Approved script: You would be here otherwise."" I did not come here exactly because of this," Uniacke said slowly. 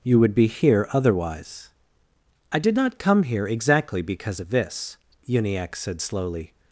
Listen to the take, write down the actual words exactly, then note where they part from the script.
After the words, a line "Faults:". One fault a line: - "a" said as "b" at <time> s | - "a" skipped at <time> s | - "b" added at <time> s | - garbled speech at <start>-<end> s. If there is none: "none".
You would be here otherwise."" I did not come here exactly because of this," Uniacke said slowly.
Faults:
none